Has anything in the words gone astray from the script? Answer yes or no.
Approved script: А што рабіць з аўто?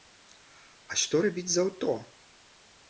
no